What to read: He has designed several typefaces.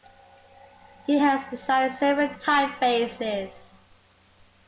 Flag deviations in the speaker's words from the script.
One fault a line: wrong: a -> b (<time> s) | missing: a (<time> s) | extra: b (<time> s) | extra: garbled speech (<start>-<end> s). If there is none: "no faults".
no faults